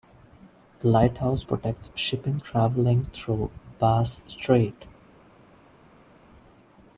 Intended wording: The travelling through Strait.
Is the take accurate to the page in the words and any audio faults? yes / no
no